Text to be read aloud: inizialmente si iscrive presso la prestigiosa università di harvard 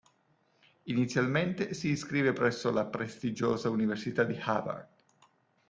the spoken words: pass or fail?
pass